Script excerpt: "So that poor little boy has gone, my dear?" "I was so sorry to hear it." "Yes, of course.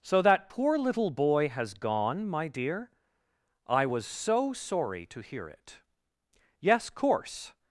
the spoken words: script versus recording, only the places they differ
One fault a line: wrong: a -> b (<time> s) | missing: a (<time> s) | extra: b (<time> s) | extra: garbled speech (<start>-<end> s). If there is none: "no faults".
missing: of (6.9 s)